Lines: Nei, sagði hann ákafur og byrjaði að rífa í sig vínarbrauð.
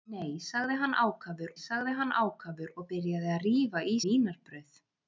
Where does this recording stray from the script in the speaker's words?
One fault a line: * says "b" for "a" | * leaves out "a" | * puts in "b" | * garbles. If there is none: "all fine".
* puts in "sagði hann ákafur"
* leaves out "sig"